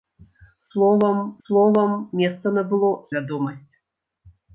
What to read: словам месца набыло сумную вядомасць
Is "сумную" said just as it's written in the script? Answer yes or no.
no